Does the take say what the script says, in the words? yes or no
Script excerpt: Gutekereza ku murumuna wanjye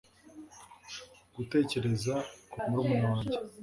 yes